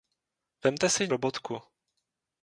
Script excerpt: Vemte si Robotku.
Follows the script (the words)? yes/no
yes